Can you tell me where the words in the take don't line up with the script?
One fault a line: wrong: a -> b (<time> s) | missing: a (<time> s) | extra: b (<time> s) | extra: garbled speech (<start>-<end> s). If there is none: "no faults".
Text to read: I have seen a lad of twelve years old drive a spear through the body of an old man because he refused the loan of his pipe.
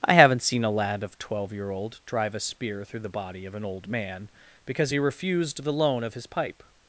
wrong: have -> haven't (0.1 s)
wrong: years -> year (1.5 s)